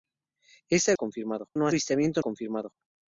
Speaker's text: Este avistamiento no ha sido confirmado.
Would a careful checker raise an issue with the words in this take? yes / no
yes